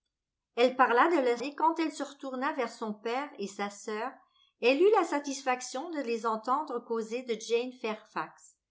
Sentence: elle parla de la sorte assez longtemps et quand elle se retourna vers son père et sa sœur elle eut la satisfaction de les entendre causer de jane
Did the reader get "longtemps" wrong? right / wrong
wrong